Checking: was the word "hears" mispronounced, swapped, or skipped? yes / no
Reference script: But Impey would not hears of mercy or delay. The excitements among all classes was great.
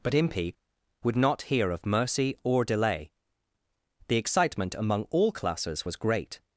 yes